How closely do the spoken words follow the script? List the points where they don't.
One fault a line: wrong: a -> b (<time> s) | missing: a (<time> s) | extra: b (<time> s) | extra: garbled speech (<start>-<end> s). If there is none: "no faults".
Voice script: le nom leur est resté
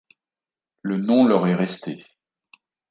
no faults